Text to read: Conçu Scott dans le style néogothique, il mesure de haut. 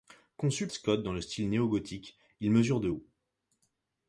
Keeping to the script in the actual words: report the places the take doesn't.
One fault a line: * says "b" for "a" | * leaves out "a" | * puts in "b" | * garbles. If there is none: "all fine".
all fine